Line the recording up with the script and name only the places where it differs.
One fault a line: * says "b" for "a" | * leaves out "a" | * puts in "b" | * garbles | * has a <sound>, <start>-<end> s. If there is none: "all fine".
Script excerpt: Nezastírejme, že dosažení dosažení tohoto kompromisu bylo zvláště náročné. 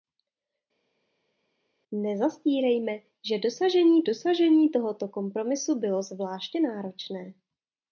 all fine